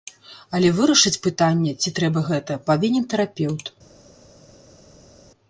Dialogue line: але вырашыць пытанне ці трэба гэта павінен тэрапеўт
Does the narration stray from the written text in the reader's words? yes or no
no